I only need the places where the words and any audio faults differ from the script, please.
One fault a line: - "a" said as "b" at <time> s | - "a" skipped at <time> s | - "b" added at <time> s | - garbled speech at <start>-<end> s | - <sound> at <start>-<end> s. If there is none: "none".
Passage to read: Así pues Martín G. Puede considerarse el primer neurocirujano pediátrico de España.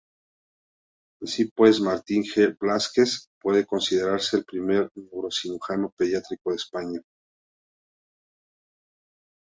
- "Blázquez" added at 2.6 s